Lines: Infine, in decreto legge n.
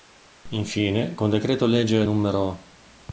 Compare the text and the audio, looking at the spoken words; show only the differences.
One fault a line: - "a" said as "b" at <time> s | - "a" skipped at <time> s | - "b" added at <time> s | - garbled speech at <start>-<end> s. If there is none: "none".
- "in" said as "con" at 1.1 s